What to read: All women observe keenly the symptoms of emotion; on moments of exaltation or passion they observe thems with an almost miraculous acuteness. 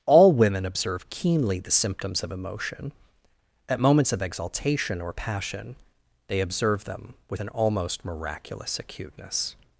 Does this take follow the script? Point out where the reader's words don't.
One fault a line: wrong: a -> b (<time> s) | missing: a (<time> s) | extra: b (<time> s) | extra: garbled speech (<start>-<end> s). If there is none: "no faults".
wrong: on -> at (3.7 s)
wrong: thems -> them (6.8 s)